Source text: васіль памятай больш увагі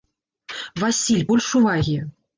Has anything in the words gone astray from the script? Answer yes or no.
yes